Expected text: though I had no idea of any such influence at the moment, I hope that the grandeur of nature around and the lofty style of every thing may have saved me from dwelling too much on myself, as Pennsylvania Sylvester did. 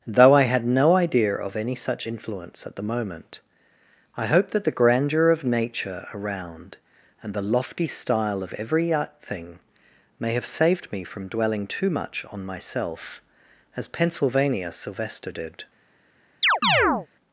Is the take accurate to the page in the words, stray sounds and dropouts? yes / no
no